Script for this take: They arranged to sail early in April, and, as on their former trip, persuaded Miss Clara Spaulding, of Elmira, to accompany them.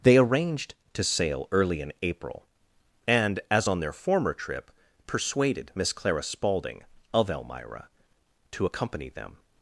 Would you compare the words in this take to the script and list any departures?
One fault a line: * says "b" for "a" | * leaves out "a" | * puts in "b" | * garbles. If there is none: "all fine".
all fine